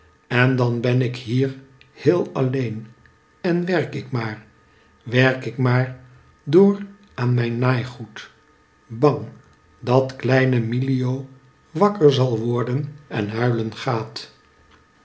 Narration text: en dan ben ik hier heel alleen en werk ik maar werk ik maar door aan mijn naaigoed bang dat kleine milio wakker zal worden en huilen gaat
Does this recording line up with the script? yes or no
yes